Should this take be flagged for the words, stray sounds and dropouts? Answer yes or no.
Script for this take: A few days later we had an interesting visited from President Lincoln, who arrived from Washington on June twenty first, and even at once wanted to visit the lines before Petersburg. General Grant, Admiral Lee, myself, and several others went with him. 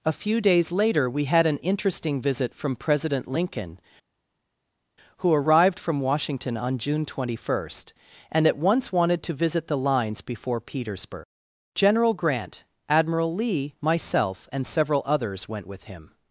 yes